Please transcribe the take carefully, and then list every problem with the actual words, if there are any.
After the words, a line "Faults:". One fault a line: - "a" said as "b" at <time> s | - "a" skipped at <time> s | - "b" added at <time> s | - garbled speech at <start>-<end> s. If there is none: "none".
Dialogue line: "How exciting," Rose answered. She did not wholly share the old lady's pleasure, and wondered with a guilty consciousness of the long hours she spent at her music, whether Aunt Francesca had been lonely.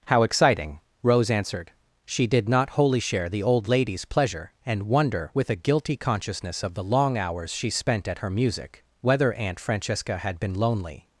"How exciting," Rose answered. She did not wholly share the old lady's pleasure, and wonder with a guilty consciousness of the long hours she spent at her music, whether Aunt Francesca had been lonely.
Faults:
- "wondered" said as "wonder" at 4.8 s